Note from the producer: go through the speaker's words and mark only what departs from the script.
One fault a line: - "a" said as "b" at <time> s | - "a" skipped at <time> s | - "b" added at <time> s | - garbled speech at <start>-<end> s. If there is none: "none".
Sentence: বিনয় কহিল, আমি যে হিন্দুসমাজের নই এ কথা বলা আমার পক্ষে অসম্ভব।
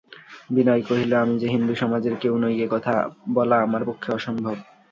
- "কেউ" added at 2.1 s